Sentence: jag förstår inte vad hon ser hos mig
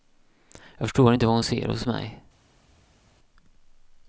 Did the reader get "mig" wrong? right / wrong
right